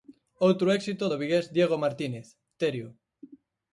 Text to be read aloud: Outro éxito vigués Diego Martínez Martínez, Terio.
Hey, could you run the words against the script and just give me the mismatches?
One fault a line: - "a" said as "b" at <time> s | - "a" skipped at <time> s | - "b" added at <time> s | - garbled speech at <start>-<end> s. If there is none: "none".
- "do" added at 1.1 s
- "Martínez" skipped at 2.3 s